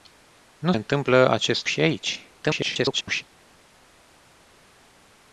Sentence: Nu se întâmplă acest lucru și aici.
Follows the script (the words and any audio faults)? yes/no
no